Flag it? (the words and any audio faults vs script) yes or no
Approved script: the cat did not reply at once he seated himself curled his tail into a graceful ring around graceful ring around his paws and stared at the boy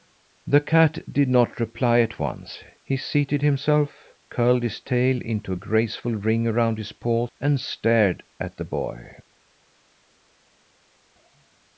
yes